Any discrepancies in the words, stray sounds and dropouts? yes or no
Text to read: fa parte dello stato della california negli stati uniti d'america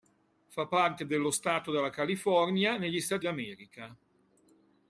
yes